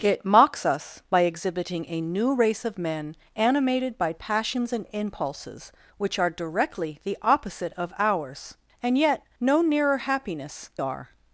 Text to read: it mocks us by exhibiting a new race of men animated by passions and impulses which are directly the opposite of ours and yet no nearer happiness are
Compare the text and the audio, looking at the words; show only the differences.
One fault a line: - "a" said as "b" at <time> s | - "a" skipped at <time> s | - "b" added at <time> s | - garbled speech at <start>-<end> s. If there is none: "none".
none